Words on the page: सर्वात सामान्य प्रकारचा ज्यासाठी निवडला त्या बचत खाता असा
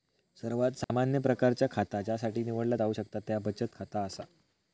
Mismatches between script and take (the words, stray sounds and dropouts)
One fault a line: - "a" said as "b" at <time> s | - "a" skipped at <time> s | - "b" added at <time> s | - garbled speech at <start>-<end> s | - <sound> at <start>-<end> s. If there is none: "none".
- dropout at 0.8-0.9 s
- "खाता" added at 1.7 s
- "जाऊ शकता" added at 2.7 s